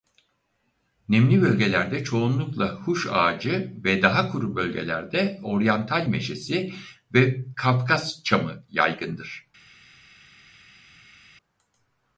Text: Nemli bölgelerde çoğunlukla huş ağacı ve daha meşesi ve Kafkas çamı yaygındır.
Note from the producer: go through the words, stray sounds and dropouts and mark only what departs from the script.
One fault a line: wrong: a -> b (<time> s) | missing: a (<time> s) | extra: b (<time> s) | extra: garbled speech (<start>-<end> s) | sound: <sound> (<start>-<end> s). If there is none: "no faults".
extra: kuru bölgelerde Oryantal (4.3 s)